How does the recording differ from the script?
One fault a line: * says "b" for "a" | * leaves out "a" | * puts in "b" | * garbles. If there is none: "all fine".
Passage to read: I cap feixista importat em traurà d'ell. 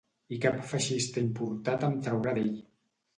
all fine